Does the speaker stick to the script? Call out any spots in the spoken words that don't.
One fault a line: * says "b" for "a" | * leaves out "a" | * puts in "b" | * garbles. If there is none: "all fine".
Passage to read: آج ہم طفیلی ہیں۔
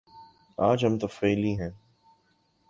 all fine